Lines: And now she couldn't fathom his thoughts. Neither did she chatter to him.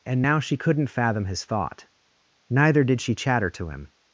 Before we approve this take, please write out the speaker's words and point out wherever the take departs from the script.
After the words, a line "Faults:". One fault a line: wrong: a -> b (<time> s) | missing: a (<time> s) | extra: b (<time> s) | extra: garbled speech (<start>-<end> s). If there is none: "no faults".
And now she couldn't fathom his thought. Neither did she chatter to him.
Faults:
wrong: thoughts -> thought (1.4 s)